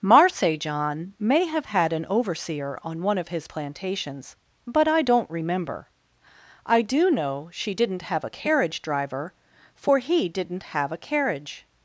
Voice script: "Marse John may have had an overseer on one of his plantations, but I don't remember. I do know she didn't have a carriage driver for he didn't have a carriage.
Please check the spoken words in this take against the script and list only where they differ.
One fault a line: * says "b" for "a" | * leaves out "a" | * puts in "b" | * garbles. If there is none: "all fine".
all fine